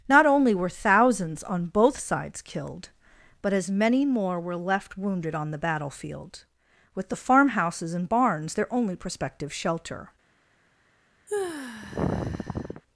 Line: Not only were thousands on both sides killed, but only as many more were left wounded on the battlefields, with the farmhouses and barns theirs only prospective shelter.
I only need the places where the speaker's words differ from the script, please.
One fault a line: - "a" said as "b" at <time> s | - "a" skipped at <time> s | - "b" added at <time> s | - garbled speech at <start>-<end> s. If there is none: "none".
- "only" skipped at 3.5 s
- "battlefields" said as "battlefield" at 5.6 s
- "theirs" said as "their" at 8.5 s